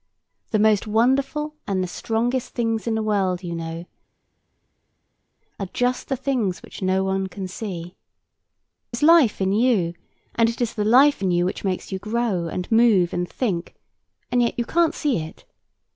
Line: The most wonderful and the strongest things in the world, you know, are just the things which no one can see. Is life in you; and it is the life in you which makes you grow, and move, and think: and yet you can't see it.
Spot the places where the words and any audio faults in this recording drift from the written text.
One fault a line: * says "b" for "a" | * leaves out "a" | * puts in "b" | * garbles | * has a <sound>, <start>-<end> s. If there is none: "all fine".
all fine